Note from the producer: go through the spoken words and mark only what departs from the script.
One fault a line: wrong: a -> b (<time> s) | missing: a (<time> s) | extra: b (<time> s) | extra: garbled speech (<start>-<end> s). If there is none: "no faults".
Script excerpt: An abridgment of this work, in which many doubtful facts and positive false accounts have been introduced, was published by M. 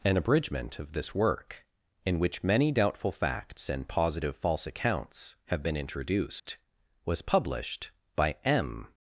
no faults